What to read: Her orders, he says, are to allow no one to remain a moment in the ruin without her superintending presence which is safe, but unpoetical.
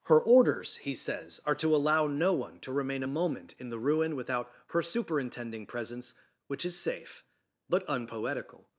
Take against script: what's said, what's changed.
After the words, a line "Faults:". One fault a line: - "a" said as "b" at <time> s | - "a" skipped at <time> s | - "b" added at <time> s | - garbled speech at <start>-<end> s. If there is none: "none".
Her orders, he says, are to allow no one to remain a moment in the ruin without her superintending presence which is safe, but unpoetical.
Faults:
none